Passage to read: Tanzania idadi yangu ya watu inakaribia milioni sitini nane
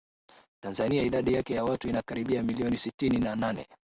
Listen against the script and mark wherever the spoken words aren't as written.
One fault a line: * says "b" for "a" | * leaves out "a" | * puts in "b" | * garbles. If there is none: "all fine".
* says "yake" for "yangu"
* puts in "na"